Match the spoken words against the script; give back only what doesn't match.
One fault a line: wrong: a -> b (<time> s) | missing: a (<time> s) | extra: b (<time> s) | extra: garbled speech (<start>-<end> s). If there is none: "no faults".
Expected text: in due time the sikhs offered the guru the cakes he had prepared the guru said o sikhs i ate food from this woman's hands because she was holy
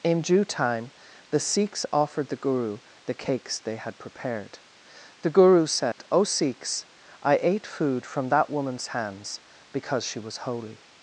wrong: he -> they (3.6 s)
wrong: this -> that (8.3 s)